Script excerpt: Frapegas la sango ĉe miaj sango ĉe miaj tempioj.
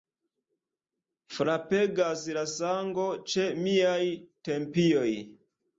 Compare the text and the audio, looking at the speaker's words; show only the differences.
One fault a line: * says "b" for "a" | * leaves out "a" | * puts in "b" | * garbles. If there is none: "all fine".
* leaves out "sango ĉe miaj"